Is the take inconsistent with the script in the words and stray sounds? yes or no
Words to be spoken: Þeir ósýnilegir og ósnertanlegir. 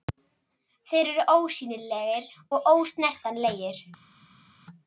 yes